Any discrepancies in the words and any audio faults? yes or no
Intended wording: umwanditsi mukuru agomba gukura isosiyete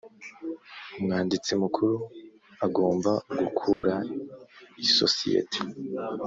yes